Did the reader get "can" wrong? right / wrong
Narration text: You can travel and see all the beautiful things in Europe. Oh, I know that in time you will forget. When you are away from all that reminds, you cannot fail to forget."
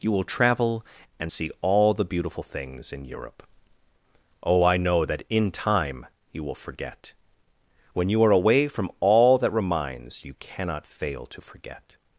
wrong